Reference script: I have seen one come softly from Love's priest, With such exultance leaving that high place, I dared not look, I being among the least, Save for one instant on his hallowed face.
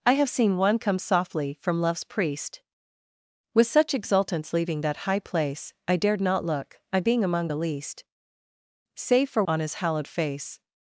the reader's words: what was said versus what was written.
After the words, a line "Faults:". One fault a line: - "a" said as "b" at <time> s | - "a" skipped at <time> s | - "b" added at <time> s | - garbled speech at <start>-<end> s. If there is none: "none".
I have seen one come softly from Love's priest, With such exultance leaving that high place, I dared not look, I being among the least, Save for on his hallowed face.
Faults:
- "one instant" skipped at 9.4 s